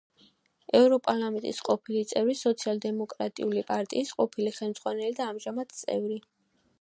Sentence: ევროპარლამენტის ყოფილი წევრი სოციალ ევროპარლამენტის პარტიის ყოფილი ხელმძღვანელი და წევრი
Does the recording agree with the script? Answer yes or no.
no